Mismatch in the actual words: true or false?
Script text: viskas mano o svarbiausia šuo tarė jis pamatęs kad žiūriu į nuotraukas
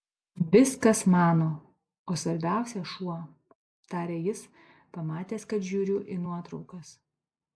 false